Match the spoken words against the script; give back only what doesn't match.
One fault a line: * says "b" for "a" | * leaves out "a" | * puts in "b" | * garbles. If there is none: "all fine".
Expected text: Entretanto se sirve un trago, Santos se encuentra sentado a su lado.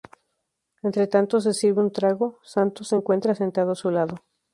all fine